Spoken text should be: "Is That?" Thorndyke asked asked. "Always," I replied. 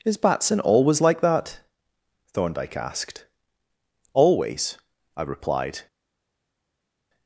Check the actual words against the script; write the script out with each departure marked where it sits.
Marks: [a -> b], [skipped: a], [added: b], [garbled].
"Is [added: Batson always like] That?" Thorndyke asked [skipped: asked.] "Always," I replied.